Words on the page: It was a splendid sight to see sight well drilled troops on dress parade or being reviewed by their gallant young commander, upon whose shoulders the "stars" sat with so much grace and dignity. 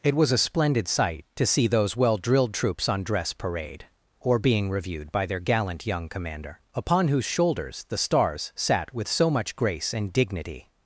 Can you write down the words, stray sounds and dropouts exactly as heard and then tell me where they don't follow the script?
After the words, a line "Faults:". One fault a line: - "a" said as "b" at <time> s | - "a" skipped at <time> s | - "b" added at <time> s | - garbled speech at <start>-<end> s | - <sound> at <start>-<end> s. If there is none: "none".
It was a splendid sight to see those well drilled troops on dress parade or being reviewed by their gallant young commander, upon whose shoulders the "stars" sat with so much grace and dignity.
Faults:
- "sight" said as "those" at 1.7 s